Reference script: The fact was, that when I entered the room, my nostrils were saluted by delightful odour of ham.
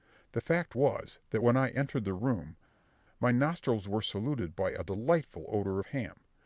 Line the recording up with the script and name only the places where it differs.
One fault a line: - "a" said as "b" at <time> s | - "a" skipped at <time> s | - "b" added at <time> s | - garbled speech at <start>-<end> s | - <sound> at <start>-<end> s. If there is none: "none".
- "a" added at 4.7 s